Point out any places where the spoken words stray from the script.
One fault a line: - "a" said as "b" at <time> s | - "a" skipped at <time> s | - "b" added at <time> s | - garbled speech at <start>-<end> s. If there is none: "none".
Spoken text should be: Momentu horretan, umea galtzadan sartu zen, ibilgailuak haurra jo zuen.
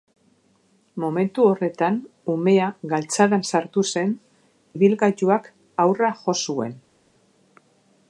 none